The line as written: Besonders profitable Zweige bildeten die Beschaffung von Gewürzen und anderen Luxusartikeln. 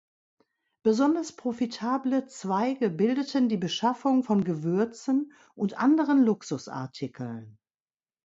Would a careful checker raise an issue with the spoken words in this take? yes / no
no